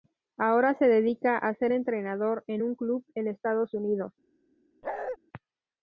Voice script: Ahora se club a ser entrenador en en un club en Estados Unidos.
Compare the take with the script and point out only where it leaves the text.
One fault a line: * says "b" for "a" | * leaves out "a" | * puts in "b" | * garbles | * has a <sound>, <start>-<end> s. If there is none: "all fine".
* says "dedica" for "club"
* leaves out "en"
* has a bark, 4.8-5.2 s